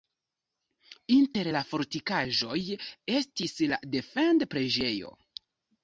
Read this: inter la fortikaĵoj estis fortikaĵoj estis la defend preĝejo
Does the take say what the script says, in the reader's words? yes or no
no